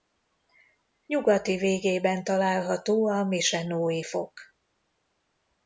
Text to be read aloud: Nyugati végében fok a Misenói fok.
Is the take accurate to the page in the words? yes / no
no